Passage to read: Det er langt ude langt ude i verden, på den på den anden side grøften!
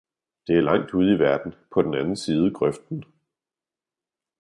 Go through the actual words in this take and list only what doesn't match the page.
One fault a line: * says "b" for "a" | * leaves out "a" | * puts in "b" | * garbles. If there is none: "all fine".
* leaves out "langt ude"
* leaves out "på den"